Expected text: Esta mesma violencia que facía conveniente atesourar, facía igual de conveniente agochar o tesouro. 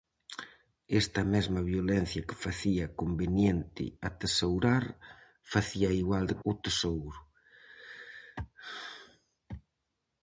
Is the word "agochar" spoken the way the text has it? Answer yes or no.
no